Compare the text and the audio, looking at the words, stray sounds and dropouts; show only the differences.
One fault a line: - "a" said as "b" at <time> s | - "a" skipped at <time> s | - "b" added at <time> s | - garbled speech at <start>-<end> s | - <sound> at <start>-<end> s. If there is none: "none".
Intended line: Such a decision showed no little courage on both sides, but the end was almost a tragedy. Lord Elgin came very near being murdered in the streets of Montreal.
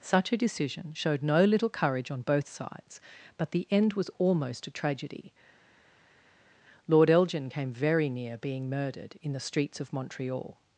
none